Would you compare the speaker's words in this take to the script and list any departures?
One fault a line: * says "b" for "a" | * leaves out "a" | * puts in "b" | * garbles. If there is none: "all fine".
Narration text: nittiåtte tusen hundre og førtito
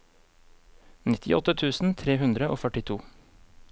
* puts in "tre"